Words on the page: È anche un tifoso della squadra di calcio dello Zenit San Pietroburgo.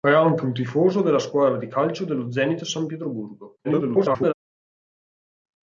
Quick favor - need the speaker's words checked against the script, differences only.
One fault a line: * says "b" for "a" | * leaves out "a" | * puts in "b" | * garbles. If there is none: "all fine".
* garbles